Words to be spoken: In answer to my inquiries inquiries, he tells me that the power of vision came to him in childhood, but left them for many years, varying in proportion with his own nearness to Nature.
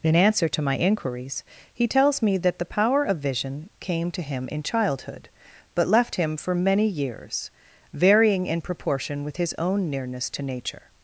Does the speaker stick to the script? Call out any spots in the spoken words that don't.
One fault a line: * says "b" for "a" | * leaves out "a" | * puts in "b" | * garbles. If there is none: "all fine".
* leaves out "inquiries"
* says "him" for "them"